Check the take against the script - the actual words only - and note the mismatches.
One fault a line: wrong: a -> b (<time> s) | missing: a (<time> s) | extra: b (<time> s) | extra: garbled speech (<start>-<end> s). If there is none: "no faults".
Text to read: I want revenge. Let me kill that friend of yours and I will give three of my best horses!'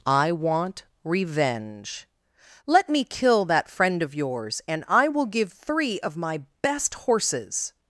no faults